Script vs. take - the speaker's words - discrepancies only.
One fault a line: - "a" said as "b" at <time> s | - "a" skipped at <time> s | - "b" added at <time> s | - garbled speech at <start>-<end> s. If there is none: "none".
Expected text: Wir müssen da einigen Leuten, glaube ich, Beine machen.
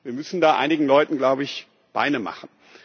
none